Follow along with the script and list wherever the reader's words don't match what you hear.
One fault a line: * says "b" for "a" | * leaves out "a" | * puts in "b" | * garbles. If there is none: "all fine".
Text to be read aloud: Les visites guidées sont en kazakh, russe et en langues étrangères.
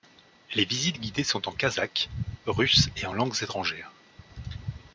all fine